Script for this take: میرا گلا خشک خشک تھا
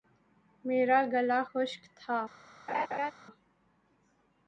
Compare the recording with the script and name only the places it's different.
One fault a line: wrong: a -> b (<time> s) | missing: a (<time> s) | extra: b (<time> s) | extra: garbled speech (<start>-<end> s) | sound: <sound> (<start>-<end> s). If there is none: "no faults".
missing: خشک (1.8 s)
sound: laugh (2.7-3.1 s)